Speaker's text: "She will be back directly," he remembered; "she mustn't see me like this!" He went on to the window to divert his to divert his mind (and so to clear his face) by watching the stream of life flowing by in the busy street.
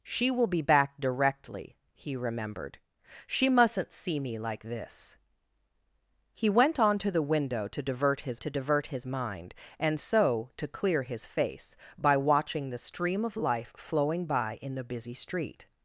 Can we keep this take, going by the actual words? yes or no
yes